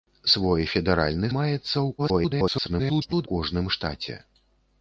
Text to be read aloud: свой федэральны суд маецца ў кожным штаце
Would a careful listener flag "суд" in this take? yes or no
yes